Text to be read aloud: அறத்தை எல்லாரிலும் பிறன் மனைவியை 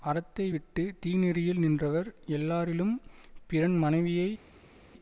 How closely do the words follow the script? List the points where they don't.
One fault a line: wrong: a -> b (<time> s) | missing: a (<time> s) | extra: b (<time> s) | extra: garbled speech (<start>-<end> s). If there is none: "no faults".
extra: விட்டு தீநெறியில் நின்றவர் (0.5 s)